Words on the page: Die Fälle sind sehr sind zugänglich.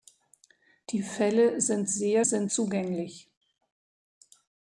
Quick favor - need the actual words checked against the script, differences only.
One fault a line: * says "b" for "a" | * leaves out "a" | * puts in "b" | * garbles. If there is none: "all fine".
all fine